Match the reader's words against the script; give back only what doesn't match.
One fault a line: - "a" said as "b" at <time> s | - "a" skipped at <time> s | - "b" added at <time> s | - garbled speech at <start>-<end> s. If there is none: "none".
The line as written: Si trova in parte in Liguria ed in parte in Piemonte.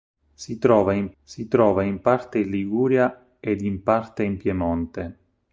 - "si trova in" added at 1.2 s